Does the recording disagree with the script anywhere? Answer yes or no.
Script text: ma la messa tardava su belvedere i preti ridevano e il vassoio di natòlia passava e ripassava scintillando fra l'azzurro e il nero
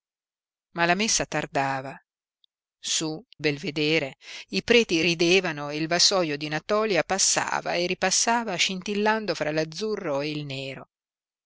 no